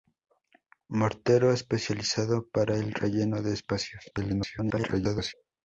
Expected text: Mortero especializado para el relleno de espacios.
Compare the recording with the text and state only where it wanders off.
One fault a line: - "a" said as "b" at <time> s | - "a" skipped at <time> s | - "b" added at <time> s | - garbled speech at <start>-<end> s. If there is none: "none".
- garbled speech at 4.1-5.3 s